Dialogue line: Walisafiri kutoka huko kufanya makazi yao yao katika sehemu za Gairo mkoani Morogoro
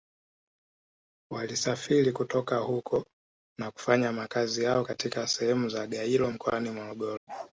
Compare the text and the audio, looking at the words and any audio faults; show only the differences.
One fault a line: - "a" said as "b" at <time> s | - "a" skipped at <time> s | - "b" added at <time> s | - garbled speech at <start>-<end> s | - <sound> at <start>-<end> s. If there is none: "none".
- "na" added at 3.6 s
- "yao" skipped at 4.8 s
- bark at 7.3-7.5 s